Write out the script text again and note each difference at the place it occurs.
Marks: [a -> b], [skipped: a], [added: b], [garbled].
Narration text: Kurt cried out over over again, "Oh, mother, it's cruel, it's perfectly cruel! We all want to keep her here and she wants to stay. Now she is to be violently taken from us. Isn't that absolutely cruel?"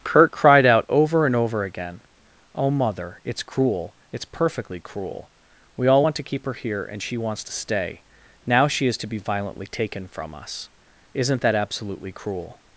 Kurt cried out over [added: and] over again, "Oh, mother, it's cruel, it's perfectly cruel! We all want to keep her here and she wants to stay. Now she is to be violently taken from us. Isn't that absolutely cruel?"